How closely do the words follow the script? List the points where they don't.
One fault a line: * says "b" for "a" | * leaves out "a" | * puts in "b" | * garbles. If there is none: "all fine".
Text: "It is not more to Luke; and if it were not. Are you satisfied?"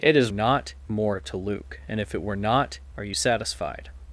all fine